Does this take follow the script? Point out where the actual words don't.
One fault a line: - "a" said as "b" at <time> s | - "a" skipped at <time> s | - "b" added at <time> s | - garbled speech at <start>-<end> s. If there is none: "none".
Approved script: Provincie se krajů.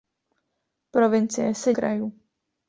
none